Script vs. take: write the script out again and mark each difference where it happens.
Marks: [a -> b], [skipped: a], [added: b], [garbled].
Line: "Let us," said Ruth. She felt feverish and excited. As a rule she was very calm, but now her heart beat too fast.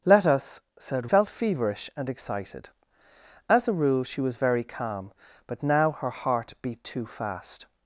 "Let us," said [skipped: Ruth. She] felt feverish and excited. As a rule she was very calm, but now her heart beat too fast.